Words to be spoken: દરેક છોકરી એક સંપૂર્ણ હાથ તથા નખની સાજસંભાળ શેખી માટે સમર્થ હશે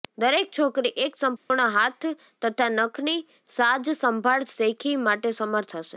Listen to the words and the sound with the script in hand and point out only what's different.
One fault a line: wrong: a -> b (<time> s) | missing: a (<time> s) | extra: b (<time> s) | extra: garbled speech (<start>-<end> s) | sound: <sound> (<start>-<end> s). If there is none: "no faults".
sound: dropout (1.4-1.5 s)